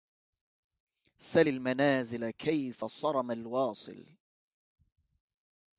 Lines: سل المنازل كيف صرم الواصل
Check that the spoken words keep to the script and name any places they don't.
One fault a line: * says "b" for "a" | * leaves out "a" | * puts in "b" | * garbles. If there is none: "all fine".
all fine